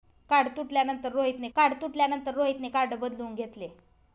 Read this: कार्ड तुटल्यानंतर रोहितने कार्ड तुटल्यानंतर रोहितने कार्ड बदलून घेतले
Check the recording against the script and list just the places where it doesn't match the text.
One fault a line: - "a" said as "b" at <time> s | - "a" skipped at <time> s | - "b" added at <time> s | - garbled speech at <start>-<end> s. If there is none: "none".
none